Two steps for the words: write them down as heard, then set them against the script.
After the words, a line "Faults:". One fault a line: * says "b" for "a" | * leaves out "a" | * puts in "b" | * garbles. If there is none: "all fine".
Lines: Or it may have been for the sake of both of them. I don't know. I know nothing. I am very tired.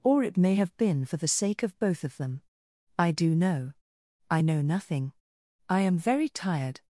Or it may have been for the sake of both of them. I do know. I know nothing. I am very tired.
Faults:
* says "do" for "don't"